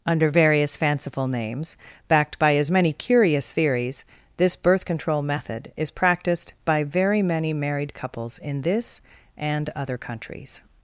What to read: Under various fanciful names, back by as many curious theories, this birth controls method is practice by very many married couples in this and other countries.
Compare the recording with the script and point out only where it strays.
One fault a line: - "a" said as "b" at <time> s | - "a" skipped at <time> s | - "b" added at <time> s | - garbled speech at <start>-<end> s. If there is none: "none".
- "back" said as "backed" at 2.1 s
- "controls" said as "control" at 4.9 s
- "practice" said as "practiced" at 5.9 s